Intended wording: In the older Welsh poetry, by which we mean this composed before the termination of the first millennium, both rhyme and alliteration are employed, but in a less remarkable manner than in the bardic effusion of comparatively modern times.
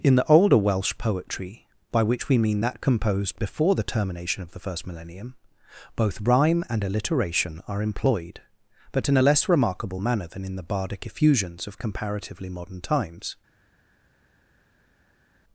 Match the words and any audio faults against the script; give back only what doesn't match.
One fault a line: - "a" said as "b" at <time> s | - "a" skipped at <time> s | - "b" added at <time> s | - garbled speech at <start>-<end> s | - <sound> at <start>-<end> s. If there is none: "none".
- "this" said as "that" at 2.6 s
- "effusion" said as "effusions" at 11.1 s